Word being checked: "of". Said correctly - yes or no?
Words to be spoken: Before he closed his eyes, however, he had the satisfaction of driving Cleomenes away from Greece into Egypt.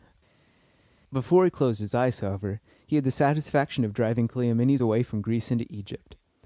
yes